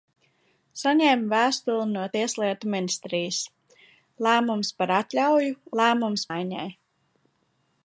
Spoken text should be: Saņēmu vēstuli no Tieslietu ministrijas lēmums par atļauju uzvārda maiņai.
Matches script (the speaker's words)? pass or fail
fail